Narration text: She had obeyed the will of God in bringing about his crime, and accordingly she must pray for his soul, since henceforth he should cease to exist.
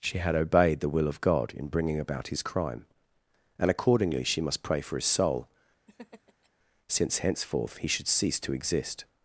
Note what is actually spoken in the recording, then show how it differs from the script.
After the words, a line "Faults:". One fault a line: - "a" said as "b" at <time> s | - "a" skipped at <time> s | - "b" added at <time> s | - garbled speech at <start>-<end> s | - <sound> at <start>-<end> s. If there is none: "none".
She had obeyed the will of God in bringing about his crime, and accordingly she must pray for his soul, since henceforth he should cease to exist.
Faults:
- laugh at 5.9-6.5 s